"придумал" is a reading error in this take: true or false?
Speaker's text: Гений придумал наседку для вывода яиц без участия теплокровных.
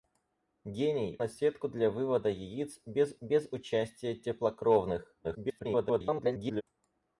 true